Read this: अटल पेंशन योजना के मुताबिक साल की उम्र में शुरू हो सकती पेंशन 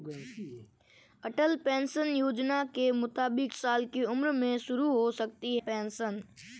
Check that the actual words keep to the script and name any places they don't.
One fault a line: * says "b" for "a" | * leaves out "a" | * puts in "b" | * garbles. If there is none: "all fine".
all fine